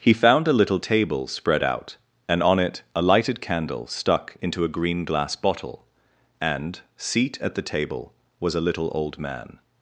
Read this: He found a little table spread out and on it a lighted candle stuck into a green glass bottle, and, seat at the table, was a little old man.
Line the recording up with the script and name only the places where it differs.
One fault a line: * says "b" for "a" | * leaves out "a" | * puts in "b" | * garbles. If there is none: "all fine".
all fine